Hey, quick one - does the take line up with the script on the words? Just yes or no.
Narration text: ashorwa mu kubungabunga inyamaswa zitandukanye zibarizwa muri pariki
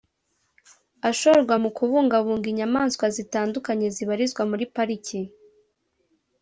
yes